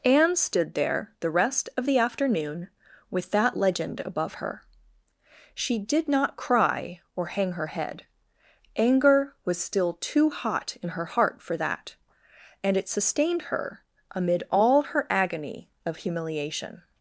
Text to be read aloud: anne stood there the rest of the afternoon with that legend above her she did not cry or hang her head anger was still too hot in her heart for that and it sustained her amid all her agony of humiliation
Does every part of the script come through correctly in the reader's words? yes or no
yes